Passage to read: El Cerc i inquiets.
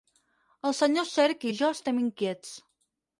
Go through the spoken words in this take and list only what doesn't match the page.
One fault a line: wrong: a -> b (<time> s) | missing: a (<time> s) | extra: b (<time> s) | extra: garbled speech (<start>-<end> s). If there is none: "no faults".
extra: senyor (0.8 s)
extra: jo estem (1.6 s)